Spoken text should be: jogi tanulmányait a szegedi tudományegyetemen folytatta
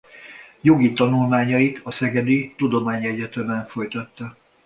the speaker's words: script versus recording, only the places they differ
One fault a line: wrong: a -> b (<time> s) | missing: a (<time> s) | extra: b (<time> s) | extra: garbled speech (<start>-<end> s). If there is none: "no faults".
no faults